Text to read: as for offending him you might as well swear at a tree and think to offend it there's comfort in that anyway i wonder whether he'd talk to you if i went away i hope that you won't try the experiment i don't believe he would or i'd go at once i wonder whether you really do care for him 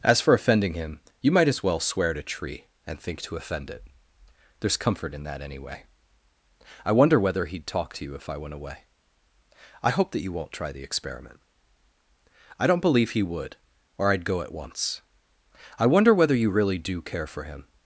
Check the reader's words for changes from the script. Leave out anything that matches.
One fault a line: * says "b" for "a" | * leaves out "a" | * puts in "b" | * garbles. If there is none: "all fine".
all fine